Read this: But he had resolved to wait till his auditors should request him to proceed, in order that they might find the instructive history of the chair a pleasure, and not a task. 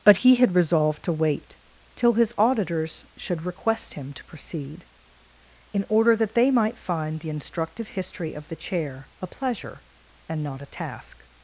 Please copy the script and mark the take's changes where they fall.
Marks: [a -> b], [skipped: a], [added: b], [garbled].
But he had resolved to wait till his auditors should request him to proceed, in order that they might find the instructive history of the chair a pleasure, and not a task.